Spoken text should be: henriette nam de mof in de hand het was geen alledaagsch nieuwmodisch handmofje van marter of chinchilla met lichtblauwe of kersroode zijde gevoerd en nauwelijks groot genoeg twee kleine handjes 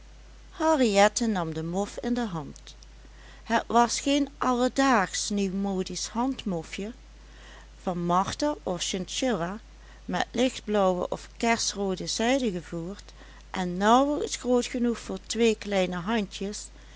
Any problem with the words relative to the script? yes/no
yes